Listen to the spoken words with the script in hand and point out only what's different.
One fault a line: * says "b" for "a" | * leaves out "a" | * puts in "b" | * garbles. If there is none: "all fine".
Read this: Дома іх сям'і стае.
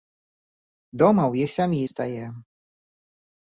* puts in "ў"